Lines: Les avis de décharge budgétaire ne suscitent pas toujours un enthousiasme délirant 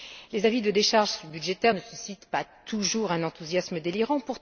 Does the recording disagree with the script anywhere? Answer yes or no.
no